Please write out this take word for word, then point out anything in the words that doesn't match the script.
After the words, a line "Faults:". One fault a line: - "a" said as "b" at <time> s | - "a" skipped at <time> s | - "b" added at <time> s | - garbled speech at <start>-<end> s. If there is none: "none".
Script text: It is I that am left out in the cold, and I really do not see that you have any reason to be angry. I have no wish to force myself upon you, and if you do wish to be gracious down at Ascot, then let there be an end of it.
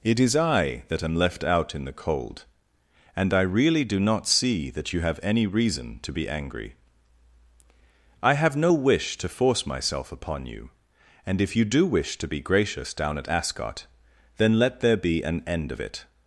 It is I that am left out in the cold, and I really do not see that you have any reason to be angry. I have no wish to force myself upon you, and if you do wish to be gracious down at Ascot, then let there be an end of it.
Faults:
none